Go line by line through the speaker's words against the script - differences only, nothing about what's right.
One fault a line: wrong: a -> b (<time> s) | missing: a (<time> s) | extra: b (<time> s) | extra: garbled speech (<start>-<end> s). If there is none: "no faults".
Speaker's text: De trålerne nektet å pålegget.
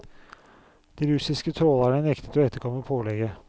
extra: russiske (1.1 s)
extra: etterkomme (2.5 s)